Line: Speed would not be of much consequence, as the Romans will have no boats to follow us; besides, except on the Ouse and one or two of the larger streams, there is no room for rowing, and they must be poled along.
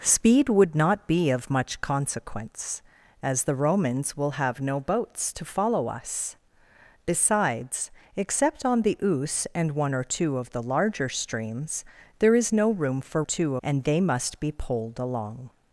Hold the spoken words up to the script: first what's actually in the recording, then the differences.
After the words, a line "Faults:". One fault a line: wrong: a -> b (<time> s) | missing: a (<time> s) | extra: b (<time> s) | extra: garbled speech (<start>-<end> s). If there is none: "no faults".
Speed would not be of much consequence, as the Romans will have no boats to follow us; besides, except on the Ouse and one or two of the larger streams, there is no room for two, and they must be poled along.
Faults:
wrong: rowing -> two (13.2 s)